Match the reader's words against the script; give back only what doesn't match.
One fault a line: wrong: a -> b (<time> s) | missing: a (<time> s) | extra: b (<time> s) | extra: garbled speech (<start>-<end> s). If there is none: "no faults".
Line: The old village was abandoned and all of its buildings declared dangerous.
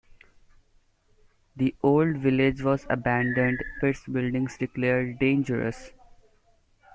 missing: and all of (3.6 s)